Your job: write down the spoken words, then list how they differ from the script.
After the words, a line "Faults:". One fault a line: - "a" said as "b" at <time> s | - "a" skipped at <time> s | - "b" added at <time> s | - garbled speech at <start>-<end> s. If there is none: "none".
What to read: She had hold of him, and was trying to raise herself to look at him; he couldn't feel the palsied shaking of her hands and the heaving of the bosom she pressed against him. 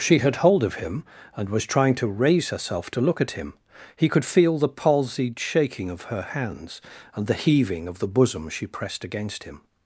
She had hold of him, and was trying to raise herself to look at him; he could feel the palsied shaking of her hands and the heaving of the bosom she pressed against him.
Faults:
- "couldn't" said as "could" at 4.1 s